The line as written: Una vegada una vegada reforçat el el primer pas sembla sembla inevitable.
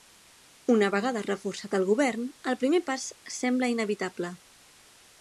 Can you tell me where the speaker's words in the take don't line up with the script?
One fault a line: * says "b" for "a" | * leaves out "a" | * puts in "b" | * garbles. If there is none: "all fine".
* leaves out "una vegada"
* puts in "govern"
* leaves out "sembla"